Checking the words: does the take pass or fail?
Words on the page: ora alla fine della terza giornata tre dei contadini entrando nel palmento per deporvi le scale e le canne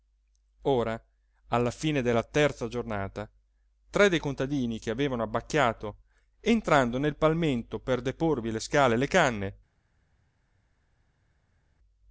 fail